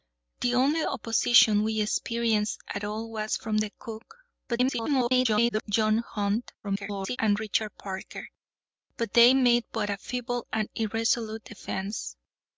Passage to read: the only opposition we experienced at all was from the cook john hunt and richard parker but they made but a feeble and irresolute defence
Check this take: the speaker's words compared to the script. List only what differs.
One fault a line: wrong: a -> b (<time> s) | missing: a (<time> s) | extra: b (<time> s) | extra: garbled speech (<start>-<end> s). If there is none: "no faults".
extra: garbled speech (4.5-5.6 s)
extra: garbled speech (6.6-7.2 s)